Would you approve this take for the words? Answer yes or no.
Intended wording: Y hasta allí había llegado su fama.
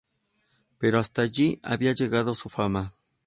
no